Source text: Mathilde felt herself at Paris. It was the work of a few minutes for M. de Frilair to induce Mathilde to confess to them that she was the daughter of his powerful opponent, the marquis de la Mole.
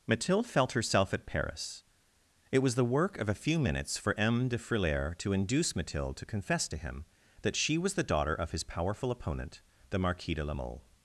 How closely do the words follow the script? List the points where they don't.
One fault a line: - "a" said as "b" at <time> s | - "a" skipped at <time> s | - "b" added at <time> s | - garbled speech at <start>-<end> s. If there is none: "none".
- "them" said as "him" at 6.8 s